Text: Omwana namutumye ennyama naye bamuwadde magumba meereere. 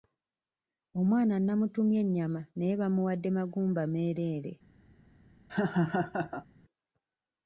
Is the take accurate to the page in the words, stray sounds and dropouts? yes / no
no